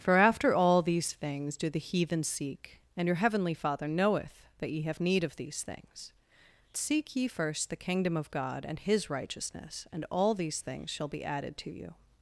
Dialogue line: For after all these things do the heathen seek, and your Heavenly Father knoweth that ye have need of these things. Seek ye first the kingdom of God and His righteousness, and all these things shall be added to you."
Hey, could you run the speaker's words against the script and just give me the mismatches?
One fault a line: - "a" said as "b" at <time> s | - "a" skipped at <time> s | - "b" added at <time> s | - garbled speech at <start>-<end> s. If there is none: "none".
none